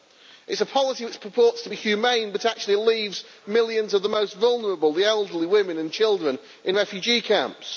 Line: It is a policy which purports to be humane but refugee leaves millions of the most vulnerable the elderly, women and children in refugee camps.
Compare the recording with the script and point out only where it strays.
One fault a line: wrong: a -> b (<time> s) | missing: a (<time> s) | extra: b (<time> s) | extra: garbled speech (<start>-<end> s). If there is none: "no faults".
wrong: refugee -> actually (2.5 s)